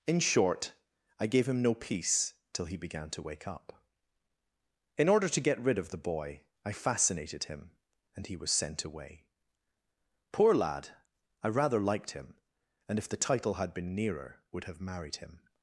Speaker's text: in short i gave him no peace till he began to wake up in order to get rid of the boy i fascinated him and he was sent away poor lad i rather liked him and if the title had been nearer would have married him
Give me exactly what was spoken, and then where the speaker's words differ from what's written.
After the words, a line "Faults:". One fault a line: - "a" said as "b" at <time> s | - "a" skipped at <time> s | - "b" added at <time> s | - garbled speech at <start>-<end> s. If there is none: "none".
in short i gave him no peace till he began to wake up in order to get rid of the boy i fascinated him and he was sent away poor lad i rather liked him and if the title had been nearer would have married him
Faults:
none